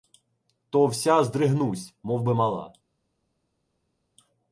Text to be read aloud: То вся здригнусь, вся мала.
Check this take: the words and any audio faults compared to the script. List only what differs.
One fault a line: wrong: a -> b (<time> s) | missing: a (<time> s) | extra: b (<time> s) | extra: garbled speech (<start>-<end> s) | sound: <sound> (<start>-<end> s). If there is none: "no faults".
wrong: вся -> мовби (2.0 s)